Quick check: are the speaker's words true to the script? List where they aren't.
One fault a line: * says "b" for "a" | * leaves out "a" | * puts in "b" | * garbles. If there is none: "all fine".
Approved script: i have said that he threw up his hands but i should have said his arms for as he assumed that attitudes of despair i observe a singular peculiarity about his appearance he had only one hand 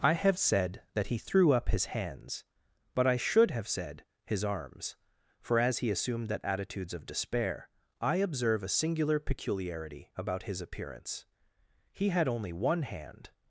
all fine